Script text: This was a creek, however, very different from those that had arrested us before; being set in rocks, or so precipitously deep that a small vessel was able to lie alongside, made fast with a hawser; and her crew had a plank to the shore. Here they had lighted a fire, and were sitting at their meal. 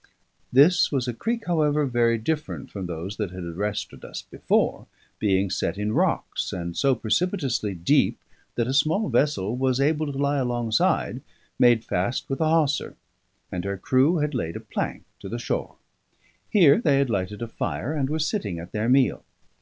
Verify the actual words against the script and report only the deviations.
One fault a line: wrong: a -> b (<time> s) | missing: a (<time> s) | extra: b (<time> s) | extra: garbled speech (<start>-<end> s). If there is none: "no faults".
wrong: or -> and (6.5 s)
extra: laid (14.3 s)